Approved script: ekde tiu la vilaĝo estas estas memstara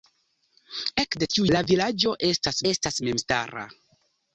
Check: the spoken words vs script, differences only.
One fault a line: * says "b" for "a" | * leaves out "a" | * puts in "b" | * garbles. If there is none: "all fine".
all fine